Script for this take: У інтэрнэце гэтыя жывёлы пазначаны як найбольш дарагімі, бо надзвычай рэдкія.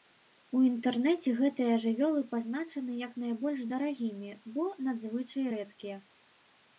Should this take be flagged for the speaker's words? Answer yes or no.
no